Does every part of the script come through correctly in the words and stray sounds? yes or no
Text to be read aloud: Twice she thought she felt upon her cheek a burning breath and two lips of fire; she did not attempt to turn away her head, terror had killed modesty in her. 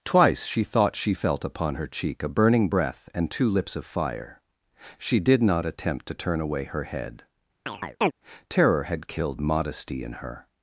no